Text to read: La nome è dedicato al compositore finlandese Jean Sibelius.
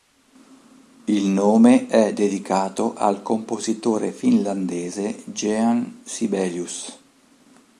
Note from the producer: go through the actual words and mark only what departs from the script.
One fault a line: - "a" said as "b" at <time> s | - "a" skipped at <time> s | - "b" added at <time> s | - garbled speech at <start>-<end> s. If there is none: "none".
- "La" said as "Il" at 1.1 s